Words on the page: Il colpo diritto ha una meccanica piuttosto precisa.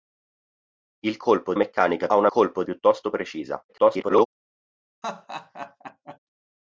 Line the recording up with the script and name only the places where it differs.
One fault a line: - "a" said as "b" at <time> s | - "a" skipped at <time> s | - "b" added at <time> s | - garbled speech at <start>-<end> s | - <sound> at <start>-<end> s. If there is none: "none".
- "diritto" said as "meccanica" at 1.6 s
- "meccanica" said as "colpo" at 2.3 s
- garbled speech at 3.7-4.3 s
- laugh at 5.0-6.2 s